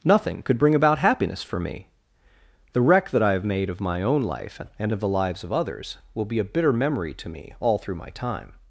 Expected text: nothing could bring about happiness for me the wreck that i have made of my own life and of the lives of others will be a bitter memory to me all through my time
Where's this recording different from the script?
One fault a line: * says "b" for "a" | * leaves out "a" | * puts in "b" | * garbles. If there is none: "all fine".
all fine